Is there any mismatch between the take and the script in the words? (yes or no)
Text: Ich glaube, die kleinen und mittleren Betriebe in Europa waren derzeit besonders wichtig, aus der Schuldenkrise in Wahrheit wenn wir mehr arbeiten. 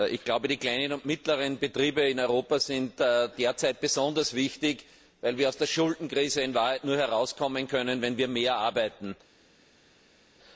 yes